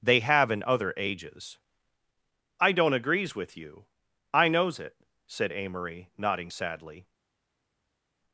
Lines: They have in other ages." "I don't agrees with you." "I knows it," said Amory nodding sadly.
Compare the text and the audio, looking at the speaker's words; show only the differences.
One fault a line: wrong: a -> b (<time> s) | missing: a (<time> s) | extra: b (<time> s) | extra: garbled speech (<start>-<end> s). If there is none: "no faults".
no faults